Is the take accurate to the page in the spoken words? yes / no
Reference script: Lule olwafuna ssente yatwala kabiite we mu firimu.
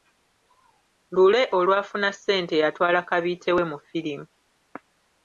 yes